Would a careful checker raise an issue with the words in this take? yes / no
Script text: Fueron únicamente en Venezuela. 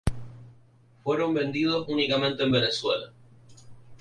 yes